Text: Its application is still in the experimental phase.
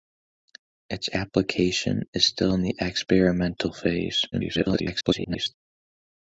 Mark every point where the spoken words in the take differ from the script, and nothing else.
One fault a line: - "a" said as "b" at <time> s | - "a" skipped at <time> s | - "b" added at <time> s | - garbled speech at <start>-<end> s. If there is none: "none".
- garbled speech at 4.3-5.5 s